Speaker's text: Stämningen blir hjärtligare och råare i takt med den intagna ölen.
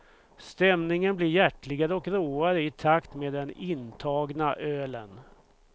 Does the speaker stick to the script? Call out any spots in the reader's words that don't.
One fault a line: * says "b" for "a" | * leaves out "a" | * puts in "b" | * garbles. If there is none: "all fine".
all fine